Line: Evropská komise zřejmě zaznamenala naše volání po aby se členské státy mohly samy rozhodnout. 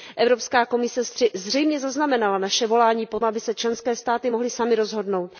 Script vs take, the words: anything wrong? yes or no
no